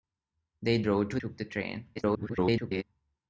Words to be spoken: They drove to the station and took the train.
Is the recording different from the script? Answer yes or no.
yes